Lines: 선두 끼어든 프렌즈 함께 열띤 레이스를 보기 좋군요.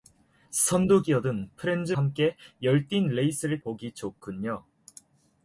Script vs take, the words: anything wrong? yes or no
no